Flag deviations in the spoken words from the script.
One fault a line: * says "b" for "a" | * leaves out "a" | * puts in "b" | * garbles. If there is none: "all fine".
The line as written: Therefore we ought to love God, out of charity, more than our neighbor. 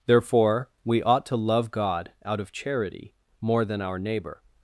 all fine